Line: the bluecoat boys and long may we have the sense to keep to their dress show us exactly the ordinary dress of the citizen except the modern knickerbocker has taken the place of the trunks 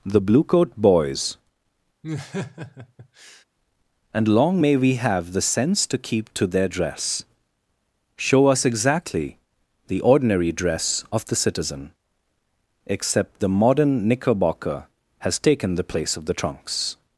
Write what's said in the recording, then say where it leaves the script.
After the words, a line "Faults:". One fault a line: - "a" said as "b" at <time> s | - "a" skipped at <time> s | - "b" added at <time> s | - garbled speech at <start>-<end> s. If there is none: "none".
the bluecoat boys and long may we have the sense to keep to their dress show us exactly the ordinary dress of the citizen except the modern knickerbocker has taken the place of the trunks
Faults:
none